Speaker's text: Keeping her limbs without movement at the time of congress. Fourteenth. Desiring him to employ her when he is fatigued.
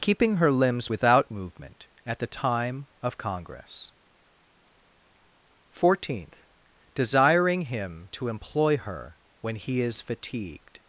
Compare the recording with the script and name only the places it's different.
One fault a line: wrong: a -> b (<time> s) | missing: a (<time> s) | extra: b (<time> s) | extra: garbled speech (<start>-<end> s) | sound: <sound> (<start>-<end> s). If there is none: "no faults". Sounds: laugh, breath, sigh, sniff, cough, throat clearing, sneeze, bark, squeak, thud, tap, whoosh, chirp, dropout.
no faults